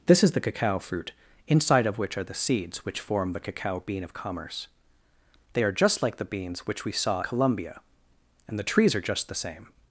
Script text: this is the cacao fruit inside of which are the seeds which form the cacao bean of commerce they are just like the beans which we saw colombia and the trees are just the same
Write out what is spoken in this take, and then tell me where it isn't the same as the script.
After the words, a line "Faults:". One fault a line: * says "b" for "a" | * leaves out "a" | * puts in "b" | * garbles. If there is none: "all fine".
this is the cacao fruit inside of which are the seeds which form the cacao bean of commerce they are just like the beans which we saw colombia and the trees are just the same
Faults:
all fine